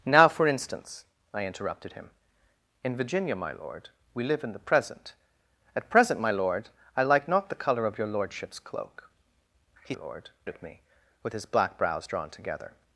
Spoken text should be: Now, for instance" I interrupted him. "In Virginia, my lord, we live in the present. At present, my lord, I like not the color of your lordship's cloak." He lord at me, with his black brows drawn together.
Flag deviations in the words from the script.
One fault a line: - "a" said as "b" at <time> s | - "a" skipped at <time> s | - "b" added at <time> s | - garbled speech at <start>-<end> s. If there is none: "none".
none